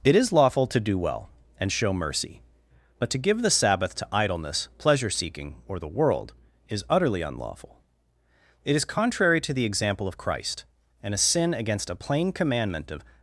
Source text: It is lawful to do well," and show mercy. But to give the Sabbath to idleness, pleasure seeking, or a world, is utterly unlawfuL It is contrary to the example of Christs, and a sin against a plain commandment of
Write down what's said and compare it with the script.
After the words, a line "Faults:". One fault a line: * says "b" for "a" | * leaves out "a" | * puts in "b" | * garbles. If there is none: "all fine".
It is lawful to do well," and show mercy. But to give the Sabbath to idleness, pleasure seeking, or the world, is utterly unlawfuL It is contrary to the example of Christ, and a sin against a plain commandment of
Faults:
* says "the" for "a"
* says "Christ" for "Christs"